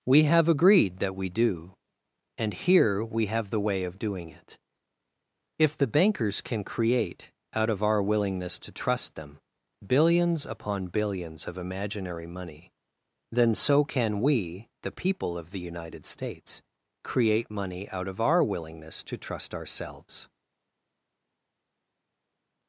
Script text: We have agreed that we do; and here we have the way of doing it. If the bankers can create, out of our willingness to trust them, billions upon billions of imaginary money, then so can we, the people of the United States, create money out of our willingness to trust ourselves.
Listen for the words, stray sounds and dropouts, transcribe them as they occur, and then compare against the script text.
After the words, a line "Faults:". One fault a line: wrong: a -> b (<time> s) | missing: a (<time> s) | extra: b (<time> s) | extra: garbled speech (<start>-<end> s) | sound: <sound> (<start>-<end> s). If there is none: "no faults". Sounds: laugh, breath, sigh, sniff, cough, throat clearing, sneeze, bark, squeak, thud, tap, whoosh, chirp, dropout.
We have agreed that we do; and here we have the way of doing it. If the bankers can create, out of our willingness to trust them, billions upon billions of imaginary money, then so can we, the people of the United States, create money out of our willingness to trust ourselves.
Faults:
no faults